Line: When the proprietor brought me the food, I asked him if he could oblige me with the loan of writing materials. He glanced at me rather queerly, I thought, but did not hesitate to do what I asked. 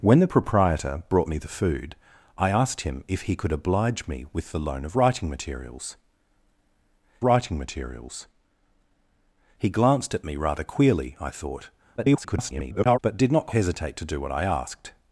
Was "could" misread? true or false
false